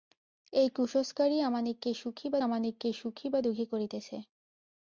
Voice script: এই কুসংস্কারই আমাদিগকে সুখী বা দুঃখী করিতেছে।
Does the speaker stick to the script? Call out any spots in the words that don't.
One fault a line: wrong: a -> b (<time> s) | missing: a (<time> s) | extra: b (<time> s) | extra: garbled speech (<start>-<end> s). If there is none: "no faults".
extra: আমাদিগকে সুখী বা (2.4 s)